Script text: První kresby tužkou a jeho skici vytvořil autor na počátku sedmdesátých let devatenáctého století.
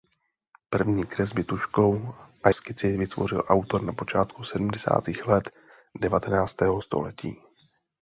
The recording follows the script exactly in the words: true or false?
false